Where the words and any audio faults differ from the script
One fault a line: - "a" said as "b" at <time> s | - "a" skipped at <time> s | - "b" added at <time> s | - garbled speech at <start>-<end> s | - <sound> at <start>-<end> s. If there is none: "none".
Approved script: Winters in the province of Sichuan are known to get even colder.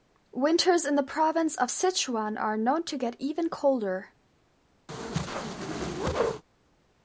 - whoosh at 4.9-6.4 s